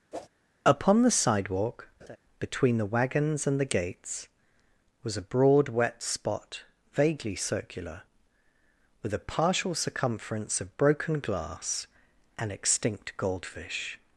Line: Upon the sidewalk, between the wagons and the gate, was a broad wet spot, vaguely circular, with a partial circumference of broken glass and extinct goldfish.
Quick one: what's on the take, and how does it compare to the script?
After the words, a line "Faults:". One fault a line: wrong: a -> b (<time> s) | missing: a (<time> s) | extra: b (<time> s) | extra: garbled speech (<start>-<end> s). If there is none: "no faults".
Upon the sidewalk, between the wagons and the gates, was a broad wet spot, vaguely circular, with a partial circumference of broken glass and extinct goldfish.
Faults:
wrong: gate -> gates (3.7 s)